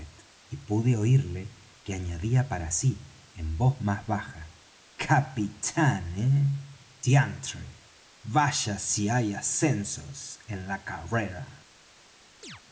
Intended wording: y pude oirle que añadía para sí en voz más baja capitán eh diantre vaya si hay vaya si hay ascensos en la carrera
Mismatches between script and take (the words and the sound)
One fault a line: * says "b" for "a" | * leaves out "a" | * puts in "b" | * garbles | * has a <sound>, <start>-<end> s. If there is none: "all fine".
* leaves out "vaya si hay"
* has a chirp, 12.4-12.6 s